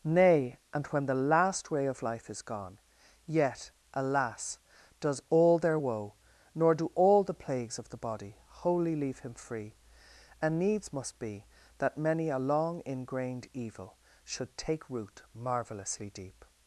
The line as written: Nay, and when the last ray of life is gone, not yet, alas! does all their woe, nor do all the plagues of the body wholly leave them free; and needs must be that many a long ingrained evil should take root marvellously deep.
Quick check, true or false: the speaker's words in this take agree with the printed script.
false